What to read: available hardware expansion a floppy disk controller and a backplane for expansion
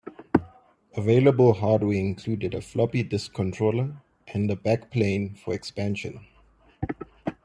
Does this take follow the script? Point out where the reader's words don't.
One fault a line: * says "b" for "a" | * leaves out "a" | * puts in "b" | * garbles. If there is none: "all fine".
* says "included" for "expansion"